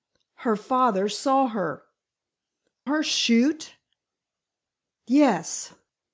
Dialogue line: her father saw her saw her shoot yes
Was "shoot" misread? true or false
false